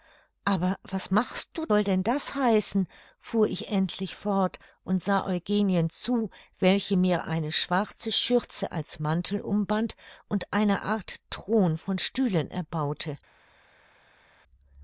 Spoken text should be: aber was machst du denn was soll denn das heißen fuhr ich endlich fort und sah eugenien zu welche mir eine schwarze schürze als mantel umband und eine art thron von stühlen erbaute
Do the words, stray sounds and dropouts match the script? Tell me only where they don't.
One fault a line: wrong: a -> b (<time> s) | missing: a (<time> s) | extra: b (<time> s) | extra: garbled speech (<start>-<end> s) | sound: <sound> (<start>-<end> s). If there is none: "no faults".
missing: denn was (1.7 s)